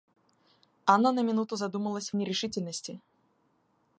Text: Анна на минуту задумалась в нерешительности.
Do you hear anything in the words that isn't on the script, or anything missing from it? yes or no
no